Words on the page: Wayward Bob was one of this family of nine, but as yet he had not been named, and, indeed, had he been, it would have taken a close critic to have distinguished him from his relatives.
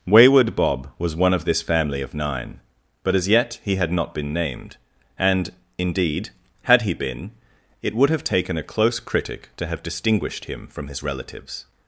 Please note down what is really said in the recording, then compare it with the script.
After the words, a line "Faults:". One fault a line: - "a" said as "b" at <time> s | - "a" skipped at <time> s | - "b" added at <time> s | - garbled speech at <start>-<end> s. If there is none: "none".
Wayward Bob was one of this family of nine, but as yet he had not been named, and, indeed, had he been, it would have taken a close critic to have distinguished him from his relatives.
Faults:
none